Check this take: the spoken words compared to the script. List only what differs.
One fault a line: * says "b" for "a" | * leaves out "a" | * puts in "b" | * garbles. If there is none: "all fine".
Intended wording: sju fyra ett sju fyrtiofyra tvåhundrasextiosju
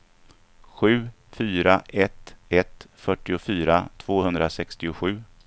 * says "ett" for "sju"